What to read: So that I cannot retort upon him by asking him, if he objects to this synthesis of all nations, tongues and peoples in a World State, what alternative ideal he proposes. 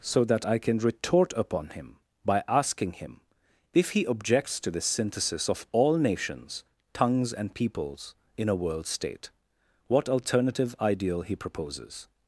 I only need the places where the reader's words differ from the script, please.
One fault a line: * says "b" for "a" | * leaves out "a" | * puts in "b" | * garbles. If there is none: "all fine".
* says "can" for "cannot"